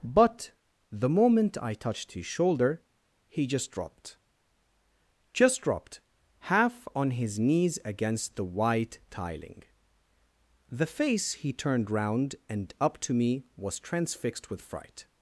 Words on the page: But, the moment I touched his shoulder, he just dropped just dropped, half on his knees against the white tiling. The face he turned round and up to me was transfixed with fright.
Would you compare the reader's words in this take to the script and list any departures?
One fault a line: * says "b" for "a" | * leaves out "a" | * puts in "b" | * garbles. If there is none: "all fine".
all fine